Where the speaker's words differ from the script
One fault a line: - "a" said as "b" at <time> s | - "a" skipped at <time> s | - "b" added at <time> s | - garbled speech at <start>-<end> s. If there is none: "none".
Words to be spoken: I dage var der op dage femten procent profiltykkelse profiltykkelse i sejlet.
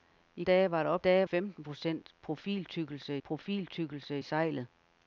none